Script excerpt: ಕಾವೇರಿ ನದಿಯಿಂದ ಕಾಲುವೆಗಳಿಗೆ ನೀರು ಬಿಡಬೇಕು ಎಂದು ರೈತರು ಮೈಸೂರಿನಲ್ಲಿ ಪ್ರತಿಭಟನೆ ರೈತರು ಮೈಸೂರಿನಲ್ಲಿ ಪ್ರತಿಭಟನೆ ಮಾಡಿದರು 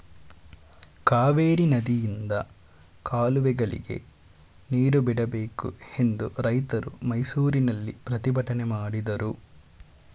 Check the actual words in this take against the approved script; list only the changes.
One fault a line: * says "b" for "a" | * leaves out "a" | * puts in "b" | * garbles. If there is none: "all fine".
* leaves out "ರೈತರು ಮೈಸೂರಿನಲ್ಲಿ ಪ್ರತಿಭಟನೆ"